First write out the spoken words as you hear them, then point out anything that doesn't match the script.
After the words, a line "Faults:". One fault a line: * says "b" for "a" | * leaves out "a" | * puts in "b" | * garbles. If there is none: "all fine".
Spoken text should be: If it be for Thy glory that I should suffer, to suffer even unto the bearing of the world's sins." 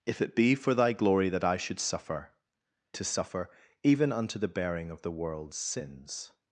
If it be for Thy glory that I should suffer, to suffer even unto the bearing of the world's sins."
Faults:
all fine